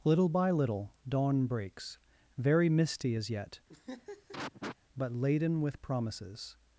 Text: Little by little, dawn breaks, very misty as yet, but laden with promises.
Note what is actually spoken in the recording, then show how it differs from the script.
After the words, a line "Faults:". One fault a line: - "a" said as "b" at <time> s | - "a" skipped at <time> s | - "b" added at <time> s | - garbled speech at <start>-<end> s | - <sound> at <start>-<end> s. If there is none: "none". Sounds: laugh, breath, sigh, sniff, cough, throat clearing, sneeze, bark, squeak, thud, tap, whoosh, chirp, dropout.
Little by little, dawn breaks, very misty as yet, but laden with promises.
Faults:
- laugh at 3.7-4.8 s